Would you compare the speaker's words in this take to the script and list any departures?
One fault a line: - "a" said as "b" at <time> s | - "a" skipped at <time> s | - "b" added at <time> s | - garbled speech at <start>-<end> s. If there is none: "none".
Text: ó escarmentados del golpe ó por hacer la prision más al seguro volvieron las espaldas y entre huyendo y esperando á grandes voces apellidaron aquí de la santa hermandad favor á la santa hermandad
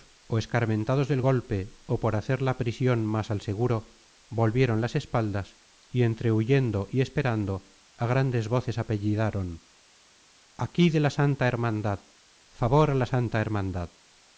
none